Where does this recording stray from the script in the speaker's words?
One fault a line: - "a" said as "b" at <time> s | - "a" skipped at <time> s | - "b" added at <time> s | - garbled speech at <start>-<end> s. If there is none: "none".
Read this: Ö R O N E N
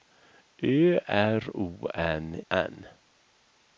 - "E" skipped at 2.4 s